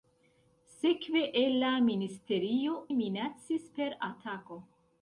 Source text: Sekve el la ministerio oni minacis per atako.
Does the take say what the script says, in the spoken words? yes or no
no